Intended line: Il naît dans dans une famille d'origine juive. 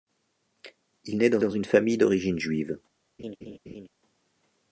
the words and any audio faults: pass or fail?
fail